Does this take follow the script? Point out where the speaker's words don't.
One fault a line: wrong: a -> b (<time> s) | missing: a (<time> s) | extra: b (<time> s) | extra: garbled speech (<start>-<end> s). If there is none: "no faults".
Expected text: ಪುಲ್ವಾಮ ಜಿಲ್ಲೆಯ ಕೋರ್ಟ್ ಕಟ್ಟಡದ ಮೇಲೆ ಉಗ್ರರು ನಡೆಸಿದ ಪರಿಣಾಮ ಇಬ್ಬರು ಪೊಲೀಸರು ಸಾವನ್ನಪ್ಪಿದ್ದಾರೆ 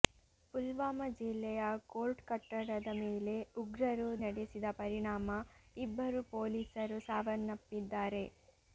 no faults